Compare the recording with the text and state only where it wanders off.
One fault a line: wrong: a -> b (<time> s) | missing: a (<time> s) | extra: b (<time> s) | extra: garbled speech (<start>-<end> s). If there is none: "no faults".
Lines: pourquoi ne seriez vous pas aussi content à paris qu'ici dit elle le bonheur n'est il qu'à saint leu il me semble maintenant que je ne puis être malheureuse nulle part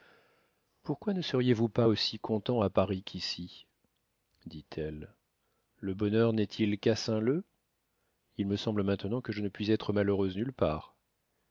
no faults